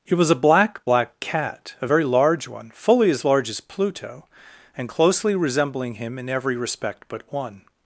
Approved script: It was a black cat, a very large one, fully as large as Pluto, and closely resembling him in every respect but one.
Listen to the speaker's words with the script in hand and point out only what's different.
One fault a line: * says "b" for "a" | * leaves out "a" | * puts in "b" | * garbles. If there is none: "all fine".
* puts in "black"